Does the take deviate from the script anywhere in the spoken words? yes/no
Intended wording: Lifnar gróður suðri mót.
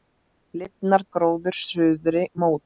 no